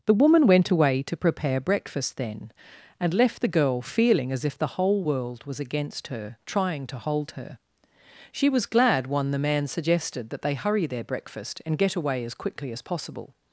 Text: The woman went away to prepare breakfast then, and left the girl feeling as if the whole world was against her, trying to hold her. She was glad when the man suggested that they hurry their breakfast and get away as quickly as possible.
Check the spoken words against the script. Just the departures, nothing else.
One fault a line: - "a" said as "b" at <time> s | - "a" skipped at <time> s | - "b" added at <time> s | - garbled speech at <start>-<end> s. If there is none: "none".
- "when" said as "one" at 9.1 s